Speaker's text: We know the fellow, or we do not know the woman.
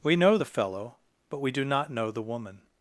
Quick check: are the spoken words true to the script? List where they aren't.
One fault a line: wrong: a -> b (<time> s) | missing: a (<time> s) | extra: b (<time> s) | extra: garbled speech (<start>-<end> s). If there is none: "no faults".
wrong: or -> but (1.3 s)